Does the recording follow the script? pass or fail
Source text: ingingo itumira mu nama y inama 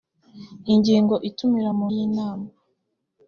fail